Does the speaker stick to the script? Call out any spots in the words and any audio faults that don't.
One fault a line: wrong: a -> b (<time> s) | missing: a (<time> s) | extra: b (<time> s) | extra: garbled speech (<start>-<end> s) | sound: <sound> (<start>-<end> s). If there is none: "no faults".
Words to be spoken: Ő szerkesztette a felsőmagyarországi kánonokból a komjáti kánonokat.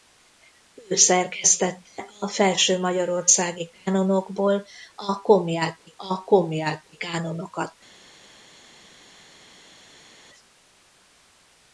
extra: a komjáti (6.0 s)